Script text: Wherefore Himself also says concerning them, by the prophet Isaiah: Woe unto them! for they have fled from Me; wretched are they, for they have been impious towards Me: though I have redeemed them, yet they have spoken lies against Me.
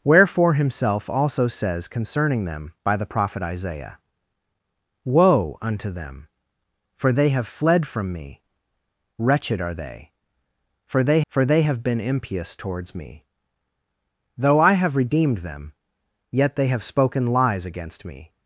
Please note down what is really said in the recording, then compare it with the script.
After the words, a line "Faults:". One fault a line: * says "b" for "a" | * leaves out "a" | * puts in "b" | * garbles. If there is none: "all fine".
Wherefore Himself also says concerning them, by the prophet Isaiah: Woe unto them! for they have fled from Me; wretched are they, for they for they have been impious towards Me: though I have redeemed them, yet they have spoken lies against Me.
Faults:
* puts in "for they"